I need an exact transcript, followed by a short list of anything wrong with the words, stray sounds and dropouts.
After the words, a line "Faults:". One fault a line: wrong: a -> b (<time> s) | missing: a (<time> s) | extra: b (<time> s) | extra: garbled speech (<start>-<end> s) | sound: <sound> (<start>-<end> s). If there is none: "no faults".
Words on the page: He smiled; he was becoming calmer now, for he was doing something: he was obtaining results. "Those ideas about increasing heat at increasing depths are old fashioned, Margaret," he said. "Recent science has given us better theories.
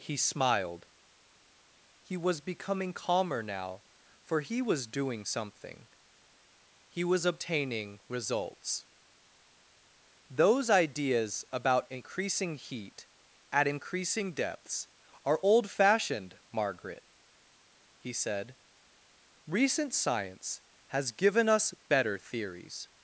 He smiled; he was becoming calmer now, for he was doing something: he was obtaining results. "Those ideas about increasing heat at increasing depths are old fashioned, Margaret," he said. "Recent science has given us better theories.
Faults:
no faults